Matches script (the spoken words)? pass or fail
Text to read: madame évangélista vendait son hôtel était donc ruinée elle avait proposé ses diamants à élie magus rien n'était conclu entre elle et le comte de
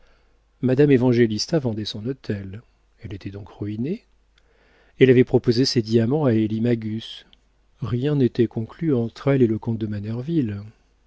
fail